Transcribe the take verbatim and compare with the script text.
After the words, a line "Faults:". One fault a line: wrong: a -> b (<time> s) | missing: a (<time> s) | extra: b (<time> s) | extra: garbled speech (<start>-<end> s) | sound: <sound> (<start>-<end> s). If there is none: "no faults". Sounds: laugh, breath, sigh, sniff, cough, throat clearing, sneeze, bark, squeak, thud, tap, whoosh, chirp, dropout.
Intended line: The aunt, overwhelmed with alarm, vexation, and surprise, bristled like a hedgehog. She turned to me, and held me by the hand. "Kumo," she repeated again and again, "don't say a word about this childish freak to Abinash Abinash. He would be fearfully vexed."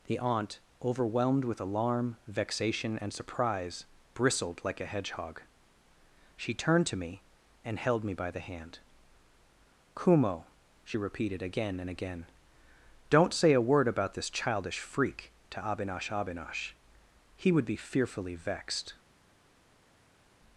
The aunt, overwhelmed with alarm, vexation, and surprise, bristled like a hedgehog. She turned to me, and held me by the hand. "Kumo," she repeated again and again, "don't say a word about this childish freak to Abinash Abinash. He would be fearfully vexed."
Faults:
no faults